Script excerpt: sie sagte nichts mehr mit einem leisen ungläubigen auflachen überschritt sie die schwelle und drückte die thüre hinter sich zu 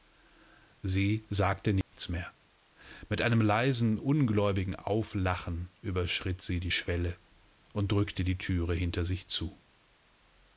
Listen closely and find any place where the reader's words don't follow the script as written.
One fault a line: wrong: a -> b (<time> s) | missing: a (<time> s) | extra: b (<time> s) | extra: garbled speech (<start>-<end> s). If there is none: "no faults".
no faults